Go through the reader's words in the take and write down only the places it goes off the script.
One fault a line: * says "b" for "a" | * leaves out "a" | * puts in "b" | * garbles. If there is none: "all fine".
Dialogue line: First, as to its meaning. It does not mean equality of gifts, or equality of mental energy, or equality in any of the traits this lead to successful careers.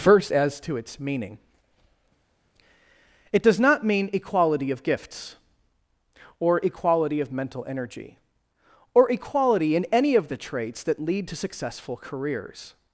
* says "that" for "this"